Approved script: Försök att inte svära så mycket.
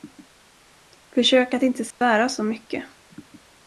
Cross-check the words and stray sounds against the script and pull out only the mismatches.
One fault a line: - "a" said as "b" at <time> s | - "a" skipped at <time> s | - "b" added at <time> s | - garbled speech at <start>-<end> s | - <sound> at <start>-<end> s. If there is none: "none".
- dropout at 1.9-2.0 s